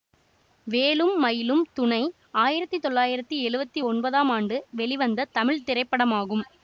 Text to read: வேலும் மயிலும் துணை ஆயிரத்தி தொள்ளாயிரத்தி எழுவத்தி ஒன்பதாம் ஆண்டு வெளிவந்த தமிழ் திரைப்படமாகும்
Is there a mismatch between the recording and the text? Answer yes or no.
no